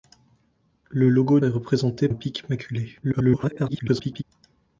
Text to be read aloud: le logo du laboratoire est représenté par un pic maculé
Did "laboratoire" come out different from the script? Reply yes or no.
yes